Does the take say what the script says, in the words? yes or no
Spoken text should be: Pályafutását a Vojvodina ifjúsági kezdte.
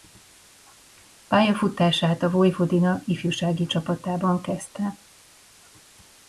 no